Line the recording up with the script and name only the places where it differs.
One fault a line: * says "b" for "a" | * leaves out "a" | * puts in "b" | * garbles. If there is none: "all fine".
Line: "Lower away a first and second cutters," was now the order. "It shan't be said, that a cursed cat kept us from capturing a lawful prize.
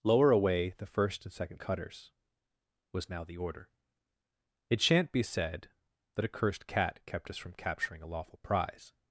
* says "the" for "a"